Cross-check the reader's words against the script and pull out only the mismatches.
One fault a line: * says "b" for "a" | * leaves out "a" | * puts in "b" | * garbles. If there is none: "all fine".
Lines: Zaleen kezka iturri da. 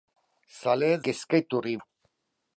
all fine